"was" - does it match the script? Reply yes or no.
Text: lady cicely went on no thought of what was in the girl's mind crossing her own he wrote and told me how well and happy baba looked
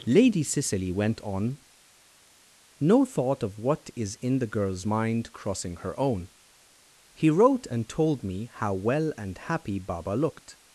no